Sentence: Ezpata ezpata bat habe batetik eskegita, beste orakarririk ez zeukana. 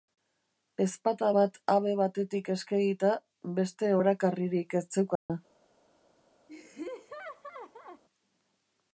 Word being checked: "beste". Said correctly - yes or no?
yes